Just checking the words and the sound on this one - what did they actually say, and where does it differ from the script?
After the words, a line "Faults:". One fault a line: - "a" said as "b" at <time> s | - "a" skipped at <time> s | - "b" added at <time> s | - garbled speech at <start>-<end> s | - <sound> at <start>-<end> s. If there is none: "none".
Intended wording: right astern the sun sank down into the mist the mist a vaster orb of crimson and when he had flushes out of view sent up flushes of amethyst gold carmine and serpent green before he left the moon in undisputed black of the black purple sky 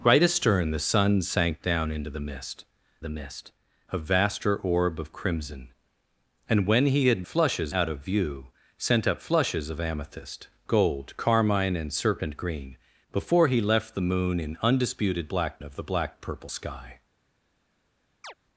right astern the sun sank down into the mist the mist a vaster orb of crimson and when he had flushes out of view sent up flushes of amethyst gold carmine and serpent green before he left the moon in undisputed black of the black purple sky
Faults:
- chirp at 18.2-18.3 s